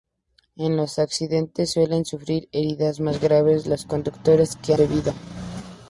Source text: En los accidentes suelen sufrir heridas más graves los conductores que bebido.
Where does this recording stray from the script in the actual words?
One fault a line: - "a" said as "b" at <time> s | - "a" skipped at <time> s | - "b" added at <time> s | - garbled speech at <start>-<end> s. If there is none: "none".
none